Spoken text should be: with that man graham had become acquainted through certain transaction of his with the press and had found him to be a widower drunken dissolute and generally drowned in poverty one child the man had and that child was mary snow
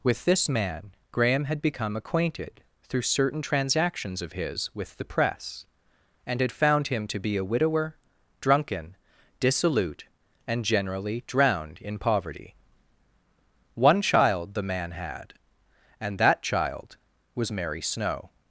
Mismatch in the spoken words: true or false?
true